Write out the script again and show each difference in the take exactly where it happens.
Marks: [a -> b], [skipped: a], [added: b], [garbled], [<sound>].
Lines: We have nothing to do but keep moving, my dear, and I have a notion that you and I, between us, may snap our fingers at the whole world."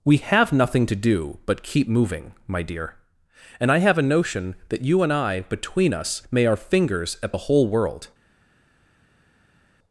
We have nothing to do but keep moving, my dear, and I have a notion that you and I, between us, may [skipped: snap] our fingers at the whole world."